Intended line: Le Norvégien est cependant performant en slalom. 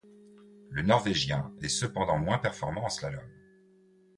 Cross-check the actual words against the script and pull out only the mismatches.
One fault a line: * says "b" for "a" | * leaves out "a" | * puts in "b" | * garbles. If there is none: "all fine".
* puts in "moins"